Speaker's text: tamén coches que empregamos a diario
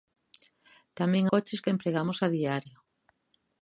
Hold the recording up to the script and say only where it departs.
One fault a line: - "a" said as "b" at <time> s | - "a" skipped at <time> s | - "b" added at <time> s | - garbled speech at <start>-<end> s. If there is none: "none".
none